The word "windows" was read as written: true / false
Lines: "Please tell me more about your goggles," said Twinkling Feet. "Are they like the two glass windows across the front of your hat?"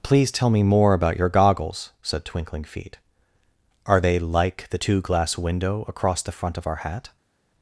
false